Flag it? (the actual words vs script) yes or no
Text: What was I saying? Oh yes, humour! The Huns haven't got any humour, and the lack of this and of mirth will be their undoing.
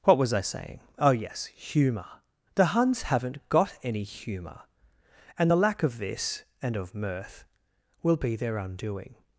no